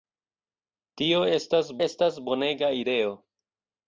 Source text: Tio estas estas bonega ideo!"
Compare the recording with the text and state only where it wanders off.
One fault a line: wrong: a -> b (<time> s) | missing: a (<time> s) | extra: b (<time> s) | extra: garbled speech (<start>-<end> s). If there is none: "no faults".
no faults